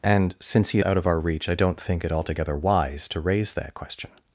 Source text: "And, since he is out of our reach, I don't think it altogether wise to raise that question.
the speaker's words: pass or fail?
fail